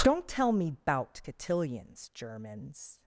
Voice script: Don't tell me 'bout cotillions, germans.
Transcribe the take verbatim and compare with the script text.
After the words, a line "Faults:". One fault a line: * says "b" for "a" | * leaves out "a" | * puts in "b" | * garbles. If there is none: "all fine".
Don't tell me 'bout cotillions, germans.
Faults:
all fine